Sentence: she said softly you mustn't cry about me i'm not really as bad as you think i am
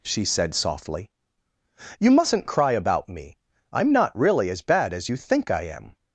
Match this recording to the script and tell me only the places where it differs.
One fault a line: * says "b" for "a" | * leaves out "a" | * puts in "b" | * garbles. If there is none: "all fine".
all fine